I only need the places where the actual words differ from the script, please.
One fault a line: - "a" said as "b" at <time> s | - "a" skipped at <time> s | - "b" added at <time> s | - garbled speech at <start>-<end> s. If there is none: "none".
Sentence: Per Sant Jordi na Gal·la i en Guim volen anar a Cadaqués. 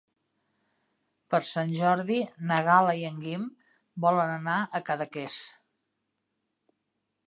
none